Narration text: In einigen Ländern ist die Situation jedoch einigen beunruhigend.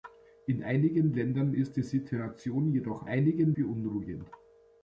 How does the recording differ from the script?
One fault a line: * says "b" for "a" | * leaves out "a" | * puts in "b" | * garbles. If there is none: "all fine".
all fine